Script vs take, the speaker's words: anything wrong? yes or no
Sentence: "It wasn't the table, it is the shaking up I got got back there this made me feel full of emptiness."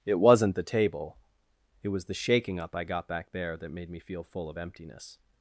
yes